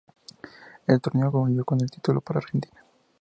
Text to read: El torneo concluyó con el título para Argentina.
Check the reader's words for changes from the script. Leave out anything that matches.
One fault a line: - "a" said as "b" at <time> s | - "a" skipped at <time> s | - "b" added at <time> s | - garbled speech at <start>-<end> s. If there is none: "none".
none